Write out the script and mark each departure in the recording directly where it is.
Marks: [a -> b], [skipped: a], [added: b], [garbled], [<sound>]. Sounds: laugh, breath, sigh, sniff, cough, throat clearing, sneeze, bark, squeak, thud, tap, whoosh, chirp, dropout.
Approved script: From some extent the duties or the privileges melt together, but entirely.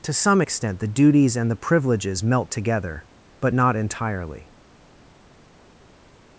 [From -> To] some extent the duties [or -> and] the privileges melt together, but [added: not] entirely.